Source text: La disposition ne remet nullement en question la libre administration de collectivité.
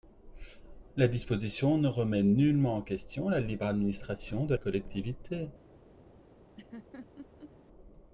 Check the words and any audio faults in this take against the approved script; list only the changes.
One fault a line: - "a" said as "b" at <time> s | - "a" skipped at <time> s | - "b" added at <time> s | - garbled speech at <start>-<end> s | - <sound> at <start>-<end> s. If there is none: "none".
- laugh at 6.6-7.5 s